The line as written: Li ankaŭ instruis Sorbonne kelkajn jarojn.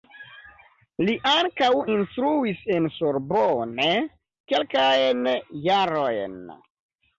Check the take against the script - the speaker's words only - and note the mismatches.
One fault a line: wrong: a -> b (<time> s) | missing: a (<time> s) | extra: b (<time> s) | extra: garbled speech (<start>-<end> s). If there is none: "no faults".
extra: en (2.8 s)